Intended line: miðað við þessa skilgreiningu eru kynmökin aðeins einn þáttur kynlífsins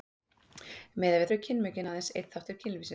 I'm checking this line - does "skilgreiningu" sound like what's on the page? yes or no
no